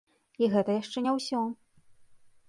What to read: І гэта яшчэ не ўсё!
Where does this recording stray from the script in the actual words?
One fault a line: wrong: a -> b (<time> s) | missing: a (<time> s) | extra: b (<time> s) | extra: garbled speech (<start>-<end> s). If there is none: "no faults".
no faults